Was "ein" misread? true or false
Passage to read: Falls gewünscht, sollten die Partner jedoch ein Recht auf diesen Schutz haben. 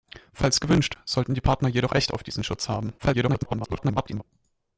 true